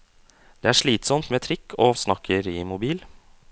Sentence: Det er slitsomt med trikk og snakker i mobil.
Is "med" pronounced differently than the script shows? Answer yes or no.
no